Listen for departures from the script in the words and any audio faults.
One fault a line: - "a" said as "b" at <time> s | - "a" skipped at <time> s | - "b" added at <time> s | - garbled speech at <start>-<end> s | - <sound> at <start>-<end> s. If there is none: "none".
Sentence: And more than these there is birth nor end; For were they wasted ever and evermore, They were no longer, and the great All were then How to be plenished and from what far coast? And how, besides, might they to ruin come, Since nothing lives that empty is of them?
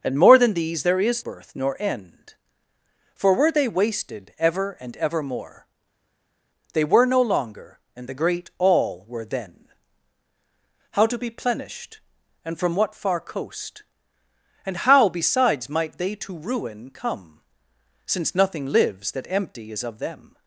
none